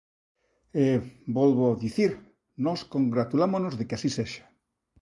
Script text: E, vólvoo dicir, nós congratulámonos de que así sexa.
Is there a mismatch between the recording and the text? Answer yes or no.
no